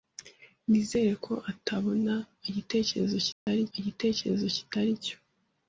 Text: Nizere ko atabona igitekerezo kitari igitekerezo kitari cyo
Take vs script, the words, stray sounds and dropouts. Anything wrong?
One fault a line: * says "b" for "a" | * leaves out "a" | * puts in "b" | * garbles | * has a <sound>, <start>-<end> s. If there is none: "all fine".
* has a dropout, 3.3-3.5 s